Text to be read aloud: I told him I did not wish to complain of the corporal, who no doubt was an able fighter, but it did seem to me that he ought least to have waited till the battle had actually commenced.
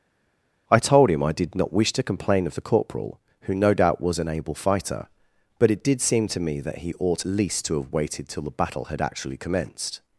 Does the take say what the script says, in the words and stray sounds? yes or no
yes